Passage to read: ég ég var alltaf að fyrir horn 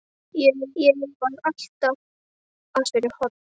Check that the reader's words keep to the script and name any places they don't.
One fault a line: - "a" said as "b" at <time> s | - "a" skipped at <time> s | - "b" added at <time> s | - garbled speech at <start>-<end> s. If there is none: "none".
none